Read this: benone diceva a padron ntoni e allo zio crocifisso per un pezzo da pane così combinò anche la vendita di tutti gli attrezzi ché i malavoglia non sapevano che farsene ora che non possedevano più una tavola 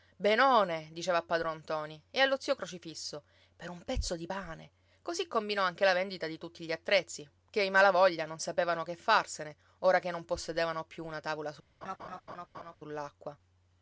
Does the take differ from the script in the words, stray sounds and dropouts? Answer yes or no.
yes